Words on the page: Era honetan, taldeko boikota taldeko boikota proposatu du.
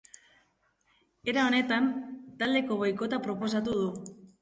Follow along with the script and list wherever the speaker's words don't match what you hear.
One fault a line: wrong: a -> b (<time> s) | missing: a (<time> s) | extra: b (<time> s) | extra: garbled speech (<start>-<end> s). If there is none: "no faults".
missing: taldeko boikota (3.2 s)